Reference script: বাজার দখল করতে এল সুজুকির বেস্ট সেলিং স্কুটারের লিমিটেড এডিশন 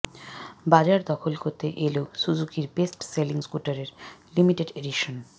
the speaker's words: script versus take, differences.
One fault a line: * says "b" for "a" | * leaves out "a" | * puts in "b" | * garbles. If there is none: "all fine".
all fine